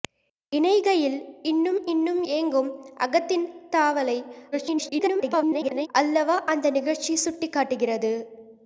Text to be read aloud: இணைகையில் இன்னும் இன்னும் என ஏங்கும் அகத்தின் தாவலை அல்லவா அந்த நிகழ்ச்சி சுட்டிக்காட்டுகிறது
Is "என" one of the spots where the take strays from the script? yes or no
yes